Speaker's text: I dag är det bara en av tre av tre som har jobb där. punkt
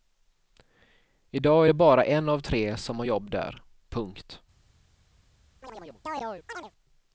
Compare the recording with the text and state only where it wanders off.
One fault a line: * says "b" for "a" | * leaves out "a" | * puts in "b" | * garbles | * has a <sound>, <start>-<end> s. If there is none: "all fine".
* leaves out "av tre"
* has a chirp, 5.6-6.7 s